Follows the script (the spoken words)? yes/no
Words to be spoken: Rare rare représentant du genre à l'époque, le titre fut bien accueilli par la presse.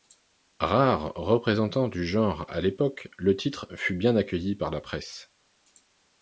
no